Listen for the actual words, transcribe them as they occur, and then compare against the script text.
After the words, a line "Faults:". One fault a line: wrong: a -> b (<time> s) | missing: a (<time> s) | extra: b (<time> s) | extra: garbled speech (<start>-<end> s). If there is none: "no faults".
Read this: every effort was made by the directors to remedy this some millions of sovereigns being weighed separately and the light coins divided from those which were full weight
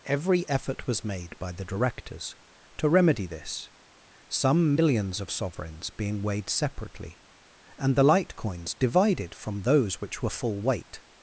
every effort was made by the directors to remedy this some millions of sovereigns being weighed separately and the light coins divided from those which were full weight
Faults:
no faults